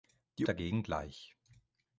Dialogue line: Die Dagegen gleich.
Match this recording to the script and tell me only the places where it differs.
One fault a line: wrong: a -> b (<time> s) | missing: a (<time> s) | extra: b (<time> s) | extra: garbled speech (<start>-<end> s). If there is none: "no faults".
no faults